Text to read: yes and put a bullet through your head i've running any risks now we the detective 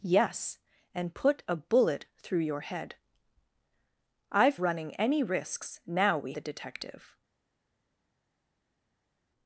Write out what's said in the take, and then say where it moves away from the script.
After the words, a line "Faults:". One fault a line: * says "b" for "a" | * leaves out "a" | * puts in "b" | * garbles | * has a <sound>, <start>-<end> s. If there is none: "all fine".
yes and put a bullet through your head i've running any risks now we the detective
Faults:
all fine